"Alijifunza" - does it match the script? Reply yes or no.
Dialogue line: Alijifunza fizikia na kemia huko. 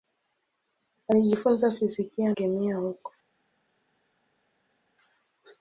yes